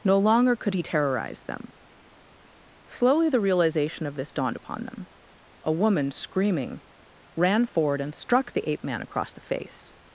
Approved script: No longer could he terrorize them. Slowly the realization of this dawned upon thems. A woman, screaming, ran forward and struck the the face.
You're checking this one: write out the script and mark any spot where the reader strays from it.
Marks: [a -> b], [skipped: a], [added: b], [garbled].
No longer could he terrorize them. Slowly the realization of this dawned upon [thems. -> them] A woman, screaming, ran forward and struck the [added: ape man across] the face.